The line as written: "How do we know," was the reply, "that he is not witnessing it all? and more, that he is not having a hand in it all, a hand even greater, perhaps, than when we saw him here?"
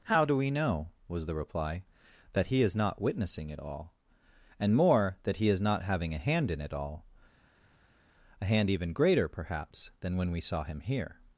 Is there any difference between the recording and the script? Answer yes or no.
no